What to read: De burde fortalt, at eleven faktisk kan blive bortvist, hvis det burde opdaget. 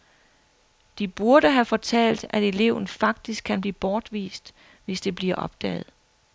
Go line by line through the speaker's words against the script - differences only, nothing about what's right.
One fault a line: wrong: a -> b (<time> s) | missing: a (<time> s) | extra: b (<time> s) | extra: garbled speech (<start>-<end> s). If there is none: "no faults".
extra: have (1.5 s)
wrong: burde -> bliver (5.1 s)